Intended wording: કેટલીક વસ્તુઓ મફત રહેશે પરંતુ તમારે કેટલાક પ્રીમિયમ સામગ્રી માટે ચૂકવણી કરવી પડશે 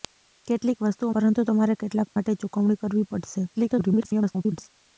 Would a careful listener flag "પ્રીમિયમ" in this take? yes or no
yes